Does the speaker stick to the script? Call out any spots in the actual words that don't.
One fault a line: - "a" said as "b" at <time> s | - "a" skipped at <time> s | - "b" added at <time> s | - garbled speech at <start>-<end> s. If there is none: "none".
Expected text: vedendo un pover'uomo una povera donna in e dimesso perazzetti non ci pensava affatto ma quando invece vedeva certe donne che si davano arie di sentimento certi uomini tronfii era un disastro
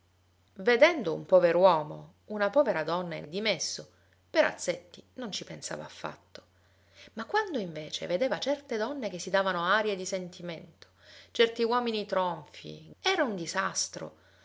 none